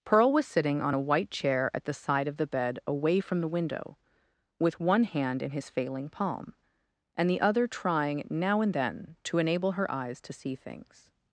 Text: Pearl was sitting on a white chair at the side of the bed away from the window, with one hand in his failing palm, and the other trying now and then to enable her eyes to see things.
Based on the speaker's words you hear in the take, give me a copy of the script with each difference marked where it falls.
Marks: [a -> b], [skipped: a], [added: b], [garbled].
Pearl was sitting on a white chair at the side of the bed away from the window, with one hand in his failing palm, and the other trying now and then to enable her eyes to see things.